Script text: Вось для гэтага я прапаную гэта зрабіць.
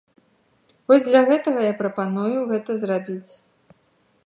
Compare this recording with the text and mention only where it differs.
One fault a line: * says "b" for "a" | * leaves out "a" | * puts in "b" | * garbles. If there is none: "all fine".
all fine